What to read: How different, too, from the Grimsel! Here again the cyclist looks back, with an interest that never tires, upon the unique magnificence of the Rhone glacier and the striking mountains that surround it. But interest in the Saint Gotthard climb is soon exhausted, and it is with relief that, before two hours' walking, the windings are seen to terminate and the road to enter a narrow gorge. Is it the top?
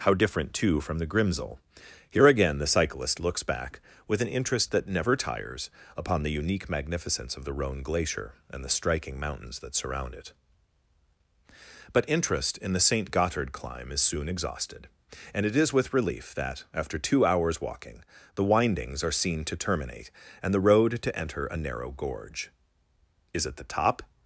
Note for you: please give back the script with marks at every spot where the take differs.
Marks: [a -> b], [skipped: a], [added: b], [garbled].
How different, too, from the Grimsel! Here again the cyclist looks back, with an interest that never tires, upon the unique magnificence of the Rhone glacier and the striking mountains that surround it. But interest in the Saint Gotthard climb is soon exhausted, and it is with relief that, [before -> after] two hours' walking, the windings are seen to terminate and the road to enter a narrow gorge. Is it the top?